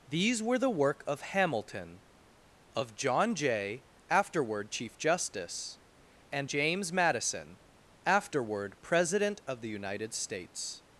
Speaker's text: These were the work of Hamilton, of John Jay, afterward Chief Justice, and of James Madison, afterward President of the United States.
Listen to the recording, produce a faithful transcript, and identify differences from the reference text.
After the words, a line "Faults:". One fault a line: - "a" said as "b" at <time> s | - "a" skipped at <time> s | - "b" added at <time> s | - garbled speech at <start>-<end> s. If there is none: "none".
These were the work of Hamilton, of John Jay, afterward Chief Justice, and James Madison, afterward President of the United States.
Faults:
- "of" skipped at 6.5 s